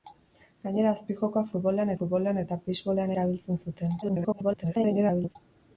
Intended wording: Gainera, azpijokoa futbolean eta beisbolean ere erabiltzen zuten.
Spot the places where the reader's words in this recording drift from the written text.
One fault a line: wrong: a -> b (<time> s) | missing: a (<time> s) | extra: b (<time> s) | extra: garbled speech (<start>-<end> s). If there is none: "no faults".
extra: futbolean (2.0 s)
missing: ere (3.1 s)
extra: garbled speech (4.0-5.4 s)